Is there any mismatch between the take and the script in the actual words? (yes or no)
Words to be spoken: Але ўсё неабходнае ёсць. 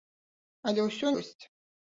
yes